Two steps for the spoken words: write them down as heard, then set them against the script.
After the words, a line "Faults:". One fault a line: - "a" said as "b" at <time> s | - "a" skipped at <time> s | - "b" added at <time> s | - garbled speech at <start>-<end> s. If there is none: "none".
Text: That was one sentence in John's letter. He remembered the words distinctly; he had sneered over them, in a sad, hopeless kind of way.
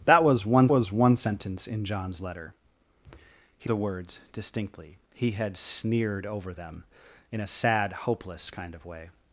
That was one was one sentence in John's letter. He the words distinctly; he had sneered over them, in a sad, hopeless kind of way.
Faults:
- "was one" added at 0.7 s
- "remembered" skipped at 3.7 s